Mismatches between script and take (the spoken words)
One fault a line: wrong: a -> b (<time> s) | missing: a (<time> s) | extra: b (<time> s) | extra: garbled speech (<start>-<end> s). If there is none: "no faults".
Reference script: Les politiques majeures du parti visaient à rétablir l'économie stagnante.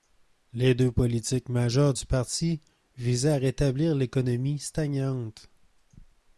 extra: deux (0.7 s)